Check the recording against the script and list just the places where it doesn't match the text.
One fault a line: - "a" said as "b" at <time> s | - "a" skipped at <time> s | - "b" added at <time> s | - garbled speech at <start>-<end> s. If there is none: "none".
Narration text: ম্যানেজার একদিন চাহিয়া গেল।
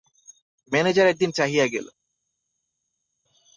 none